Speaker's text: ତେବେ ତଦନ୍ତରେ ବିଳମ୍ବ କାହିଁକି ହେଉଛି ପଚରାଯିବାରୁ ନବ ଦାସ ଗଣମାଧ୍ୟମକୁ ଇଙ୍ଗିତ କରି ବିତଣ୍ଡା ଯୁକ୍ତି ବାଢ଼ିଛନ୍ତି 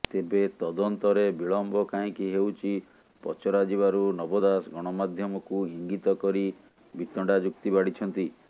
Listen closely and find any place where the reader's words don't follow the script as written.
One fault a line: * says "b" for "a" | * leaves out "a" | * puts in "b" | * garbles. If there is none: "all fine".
all fine